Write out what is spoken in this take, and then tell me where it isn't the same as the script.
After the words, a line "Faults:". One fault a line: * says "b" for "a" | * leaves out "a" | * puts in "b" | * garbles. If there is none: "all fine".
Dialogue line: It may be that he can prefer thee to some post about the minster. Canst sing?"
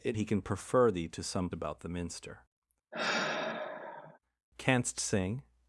It he can prefer thee to some about the minster. Canst sing?"
Faults:
* leaves out "may be that"
* leaves out "post"